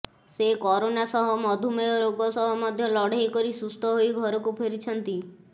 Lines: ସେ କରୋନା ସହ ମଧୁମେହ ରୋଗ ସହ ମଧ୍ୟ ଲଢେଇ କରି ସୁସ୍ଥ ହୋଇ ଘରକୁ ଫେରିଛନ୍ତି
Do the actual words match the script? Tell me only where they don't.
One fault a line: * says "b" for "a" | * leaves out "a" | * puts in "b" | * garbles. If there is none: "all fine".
all fine